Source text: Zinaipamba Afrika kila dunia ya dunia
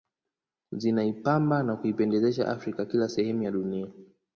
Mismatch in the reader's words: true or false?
true